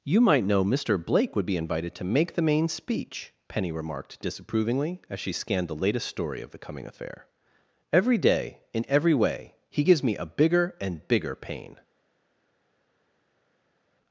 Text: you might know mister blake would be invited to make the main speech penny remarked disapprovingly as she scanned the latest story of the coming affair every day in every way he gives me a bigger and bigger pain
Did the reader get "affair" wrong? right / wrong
right